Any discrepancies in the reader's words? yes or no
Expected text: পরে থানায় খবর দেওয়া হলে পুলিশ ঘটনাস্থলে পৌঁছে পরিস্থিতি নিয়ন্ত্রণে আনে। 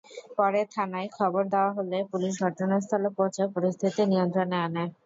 no